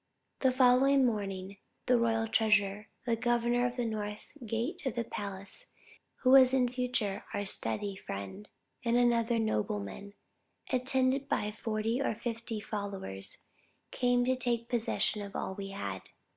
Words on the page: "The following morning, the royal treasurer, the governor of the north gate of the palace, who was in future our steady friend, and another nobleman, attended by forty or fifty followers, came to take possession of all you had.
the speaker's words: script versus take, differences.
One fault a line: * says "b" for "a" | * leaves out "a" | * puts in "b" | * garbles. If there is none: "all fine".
* says "we" for "you"